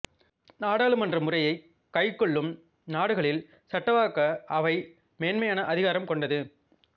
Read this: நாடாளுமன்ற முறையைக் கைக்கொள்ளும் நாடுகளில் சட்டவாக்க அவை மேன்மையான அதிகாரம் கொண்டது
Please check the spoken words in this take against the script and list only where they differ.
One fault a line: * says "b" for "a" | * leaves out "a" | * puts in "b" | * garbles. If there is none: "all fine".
all fine